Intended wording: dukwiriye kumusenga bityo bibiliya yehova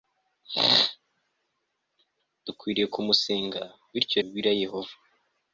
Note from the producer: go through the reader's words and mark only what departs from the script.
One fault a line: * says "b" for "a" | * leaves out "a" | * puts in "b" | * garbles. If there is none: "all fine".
all fine